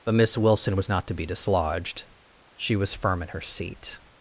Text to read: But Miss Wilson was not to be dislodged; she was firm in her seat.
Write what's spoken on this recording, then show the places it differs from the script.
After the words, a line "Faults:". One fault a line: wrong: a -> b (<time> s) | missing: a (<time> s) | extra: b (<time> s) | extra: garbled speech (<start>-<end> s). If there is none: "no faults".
But Miss Wilson was not to be dislodged; she was firm in her seat.
Faults:
no faults